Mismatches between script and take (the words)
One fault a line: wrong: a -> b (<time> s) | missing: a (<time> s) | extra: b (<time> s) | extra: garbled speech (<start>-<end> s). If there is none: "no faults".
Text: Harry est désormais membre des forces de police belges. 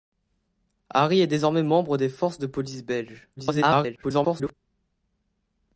extra: garbled speech (3.4-4.5 s)